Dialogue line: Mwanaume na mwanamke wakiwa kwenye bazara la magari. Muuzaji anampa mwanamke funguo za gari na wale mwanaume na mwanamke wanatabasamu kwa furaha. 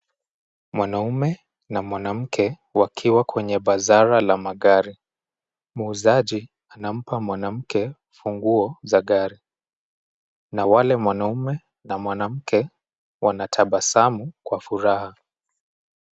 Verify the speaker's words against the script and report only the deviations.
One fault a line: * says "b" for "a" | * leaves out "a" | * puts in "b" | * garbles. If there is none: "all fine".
all fine